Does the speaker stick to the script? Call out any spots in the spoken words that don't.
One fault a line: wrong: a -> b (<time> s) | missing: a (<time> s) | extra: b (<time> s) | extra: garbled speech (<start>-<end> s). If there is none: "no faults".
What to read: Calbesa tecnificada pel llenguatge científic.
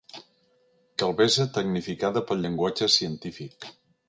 no faults